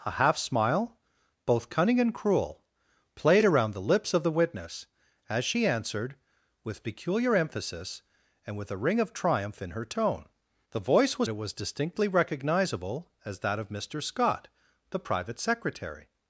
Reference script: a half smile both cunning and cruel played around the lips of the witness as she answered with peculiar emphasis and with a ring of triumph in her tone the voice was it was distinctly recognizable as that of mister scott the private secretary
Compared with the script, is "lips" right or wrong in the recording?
right